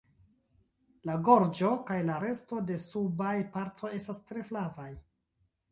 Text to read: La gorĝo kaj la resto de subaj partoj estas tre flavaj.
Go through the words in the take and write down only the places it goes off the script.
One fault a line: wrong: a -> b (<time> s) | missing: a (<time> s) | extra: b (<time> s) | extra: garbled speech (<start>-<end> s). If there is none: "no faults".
no faults